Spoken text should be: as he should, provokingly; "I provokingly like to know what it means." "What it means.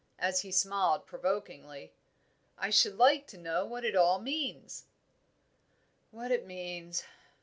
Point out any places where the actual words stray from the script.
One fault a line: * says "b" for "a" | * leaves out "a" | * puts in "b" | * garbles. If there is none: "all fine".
* says "smiled" for "should"
* says "should" for "provokingly"
* puts in "all"